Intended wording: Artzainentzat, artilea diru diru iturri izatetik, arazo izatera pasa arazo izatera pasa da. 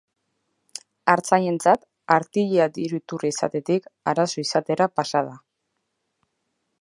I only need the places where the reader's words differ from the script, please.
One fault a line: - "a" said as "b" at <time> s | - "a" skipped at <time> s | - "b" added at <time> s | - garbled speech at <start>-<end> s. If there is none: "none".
- "diru" skipped at 3.0 s
- "arazo izatera pasa" skipped at 5.2 s